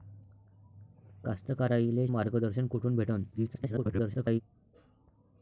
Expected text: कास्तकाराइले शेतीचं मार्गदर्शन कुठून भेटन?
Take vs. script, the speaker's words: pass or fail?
fail